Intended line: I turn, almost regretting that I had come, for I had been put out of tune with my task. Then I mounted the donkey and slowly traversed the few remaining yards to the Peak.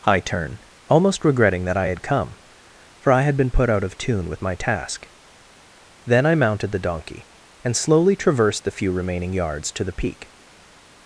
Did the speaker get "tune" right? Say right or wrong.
right